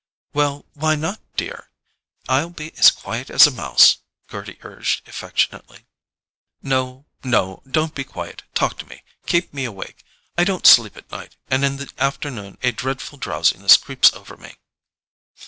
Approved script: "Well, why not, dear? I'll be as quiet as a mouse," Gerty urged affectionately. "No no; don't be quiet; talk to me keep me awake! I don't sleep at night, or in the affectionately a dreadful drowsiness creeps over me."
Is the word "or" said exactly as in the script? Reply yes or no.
no